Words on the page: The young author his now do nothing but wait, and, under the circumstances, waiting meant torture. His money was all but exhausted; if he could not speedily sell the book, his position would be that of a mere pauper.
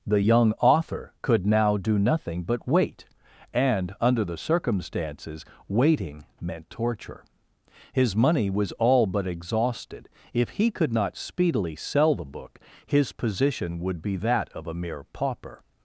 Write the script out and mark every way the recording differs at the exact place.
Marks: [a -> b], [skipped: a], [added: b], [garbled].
The young author [his -> could] now do nothing but wait, and, under the circumstances, waiting meant torture. His money was all but exhausted; if he could not speedily sell the book, his position would be that of a mere pauper.